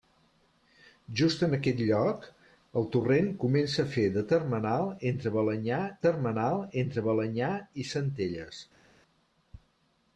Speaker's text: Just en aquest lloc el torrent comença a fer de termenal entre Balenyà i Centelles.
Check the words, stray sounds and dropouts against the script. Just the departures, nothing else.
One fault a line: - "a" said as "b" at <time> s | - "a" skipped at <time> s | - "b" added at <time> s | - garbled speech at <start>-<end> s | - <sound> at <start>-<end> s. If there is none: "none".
- "termenal entre Balenyà" added at 6.1 s